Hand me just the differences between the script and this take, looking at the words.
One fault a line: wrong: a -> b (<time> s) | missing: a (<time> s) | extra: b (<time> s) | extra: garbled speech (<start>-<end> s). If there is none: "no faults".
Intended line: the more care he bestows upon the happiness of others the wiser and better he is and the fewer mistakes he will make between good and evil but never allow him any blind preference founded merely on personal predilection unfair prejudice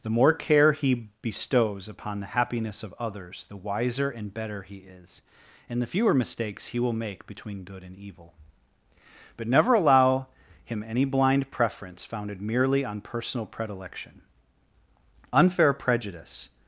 no faults